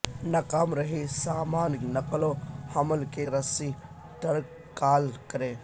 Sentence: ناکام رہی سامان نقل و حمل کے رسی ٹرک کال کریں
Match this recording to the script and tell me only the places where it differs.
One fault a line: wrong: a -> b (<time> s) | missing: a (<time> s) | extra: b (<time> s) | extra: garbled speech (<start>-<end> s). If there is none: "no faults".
no faults